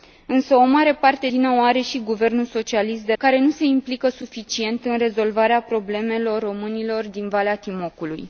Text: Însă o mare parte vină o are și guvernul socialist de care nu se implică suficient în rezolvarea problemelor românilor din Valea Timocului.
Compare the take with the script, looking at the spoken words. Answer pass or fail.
pass